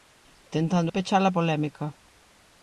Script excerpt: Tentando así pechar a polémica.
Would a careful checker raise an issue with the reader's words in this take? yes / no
yes